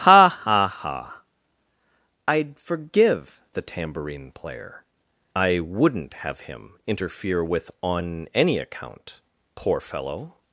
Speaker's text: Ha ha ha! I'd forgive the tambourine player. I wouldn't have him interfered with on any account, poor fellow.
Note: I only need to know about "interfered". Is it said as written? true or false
false